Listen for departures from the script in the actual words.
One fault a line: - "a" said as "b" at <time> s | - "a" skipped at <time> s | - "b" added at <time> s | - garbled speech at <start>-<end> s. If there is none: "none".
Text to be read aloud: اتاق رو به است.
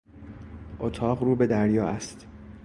- "دریا" added at 1.5 s